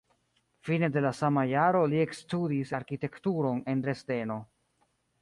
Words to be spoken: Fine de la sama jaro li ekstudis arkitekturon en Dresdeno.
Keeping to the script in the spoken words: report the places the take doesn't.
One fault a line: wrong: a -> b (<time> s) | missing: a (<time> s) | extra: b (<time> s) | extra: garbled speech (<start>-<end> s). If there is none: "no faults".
no faults